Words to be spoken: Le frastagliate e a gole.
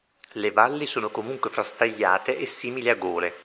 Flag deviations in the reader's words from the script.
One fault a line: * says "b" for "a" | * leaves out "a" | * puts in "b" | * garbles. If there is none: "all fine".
* puts in "valli sono comunque"
* puts in "simili"